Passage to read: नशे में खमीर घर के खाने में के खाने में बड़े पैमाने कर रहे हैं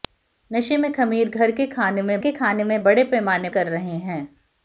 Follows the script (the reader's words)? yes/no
yes